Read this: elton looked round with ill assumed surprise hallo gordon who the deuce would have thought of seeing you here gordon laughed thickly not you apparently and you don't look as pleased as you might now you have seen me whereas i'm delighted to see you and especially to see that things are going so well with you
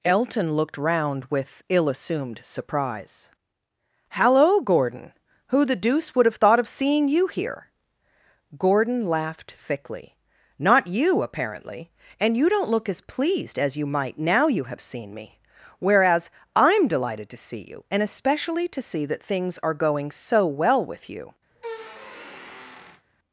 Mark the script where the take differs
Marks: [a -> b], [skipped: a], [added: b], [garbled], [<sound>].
elton looked round with ill assumed surprise hallo gordon who the deuce would have thought of seeing you here gordon laughed thickly not you apparently and you don't look as pleased as you might now you have seen me whereas i'm delighted to see you and especially to see that things are going so well with you [squeak]